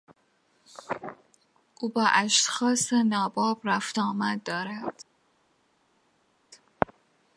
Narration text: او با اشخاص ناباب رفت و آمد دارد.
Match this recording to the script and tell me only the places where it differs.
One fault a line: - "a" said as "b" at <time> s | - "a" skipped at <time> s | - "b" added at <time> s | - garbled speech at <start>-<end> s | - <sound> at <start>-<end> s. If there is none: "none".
none